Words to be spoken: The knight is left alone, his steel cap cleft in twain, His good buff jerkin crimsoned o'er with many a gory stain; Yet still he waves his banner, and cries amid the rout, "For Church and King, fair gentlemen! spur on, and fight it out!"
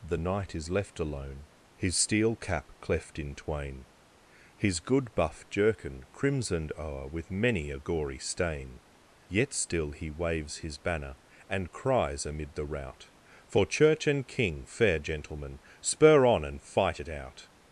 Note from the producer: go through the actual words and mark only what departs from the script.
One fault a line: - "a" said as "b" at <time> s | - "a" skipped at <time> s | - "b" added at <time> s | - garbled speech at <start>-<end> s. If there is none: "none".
none